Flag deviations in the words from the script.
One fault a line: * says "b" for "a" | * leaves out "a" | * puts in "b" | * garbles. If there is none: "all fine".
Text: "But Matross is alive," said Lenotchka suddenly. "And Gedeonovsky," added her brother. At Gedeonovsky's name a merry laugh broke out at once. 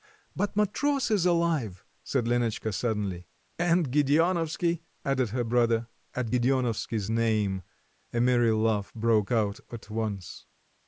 all fine